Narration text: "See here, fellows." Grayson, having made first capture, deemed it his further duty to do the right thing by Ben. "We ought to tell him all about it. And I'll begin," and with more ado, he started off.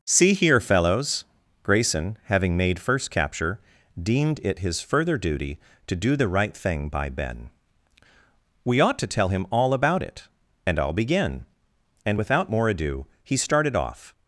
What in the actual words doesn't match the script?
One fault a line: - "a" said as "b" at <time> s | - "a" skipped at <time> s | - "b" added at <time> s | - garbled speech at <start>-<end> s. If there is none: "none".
- "with" said as "without" at 12.1 s